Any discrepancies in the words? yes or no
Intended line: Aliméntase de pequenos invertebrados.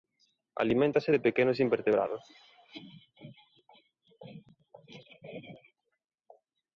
no